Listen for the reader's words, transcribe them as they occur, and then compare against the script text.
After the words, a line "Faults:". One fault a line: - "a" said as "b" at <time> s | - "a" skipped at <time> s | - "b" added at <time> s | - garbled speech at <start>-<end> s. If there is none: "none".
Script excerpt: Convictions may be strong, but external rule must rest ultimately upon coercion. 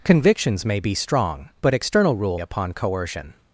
Convictions may be strong, but external rule upon coercion.
Faults:
- "must rest ultimately" skipped at 2.4 s